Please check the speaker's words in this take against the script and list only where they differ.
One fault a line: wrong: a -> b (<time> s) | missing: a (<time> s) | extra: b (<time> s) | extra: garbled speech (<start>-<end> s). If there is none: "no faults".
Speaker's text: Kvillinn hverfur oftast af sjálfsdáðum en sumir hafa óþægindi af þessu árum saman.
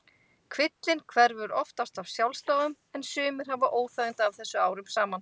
no faults